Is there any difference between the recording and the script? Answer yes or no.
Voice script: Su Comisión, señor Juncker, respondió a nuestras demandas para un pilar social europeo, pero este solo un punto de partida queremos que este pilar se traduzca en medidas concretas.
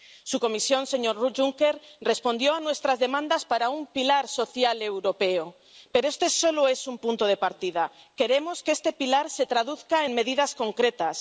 yes